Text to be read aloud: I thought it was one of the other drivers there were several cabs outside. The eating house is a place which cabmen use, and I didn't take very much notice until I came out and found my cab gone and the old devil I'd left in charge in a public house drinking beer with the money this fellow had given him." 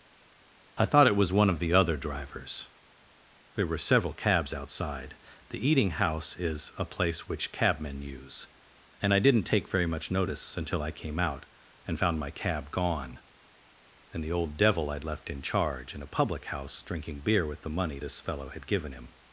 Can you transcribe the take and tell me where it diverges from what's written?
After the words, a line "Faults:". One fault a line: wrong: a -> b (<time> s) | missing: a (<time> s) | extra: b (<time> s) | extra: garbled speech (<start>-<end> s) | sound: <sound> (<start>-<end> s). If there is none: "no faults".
I thought it was one of the other drivers there were several cabs outside. The eating house is a place which cabmen use, and I didn't take very much notice until I came out and found my cab gone and the old devil I'd left in charge in a public house drinking beer with the money this fellow had given him."
Faults:
no faults